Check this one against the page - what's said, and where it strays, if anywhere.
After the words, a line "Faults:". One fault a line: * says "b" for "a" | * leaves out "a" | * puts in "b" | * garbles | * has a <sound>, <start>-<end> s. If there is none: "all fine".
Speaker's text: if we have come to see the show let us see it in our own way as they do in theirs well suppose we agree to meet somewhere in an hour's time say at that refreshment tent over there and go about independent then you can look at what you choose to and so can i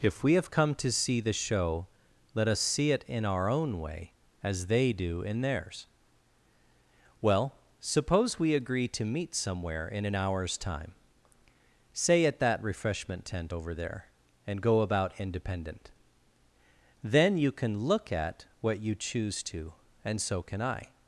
if we have come to see the show let us see it in our own way as they do in theirs well suppose we agree to meet somewhere in an hour's time say at that refreshment tent over there and go about independent then you can look at what you choose to and so can i
Faults:
all fine